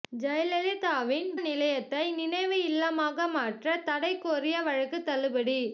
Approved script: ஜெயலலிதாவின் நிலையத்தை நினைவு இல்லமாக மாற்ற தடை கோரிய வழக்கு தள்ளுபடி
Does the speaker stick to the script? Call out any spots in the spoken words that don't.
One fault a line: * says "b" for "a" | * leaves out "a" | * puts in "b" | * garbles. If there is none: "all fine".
all fine